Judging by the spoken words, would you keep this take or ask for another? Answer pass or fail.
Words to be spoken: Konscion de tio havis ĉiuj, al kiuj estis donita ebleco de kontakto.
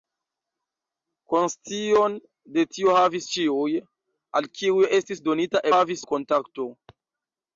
fail